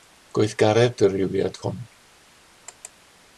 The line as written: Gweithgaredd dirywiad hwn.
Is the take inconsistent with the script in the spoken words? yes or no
no